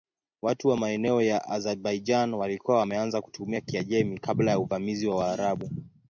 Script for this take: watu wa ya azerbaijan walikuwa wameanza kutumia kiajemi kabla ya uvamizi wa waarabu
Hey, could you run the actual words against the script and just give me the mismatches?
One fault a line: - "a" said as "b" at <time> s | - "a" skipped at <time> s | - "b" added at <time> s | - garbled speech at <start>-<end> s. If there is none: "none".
- "maeneo" added at 0.8 s